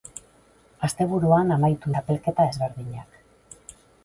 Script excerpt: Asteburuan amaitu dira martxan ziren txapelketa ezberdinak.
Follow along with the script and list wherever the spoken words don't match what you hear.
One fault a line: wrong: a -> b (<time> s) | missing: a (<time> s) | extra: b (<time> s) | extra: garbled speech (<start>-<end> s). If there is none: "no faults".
missing: dira martxan ziren (1.9 s)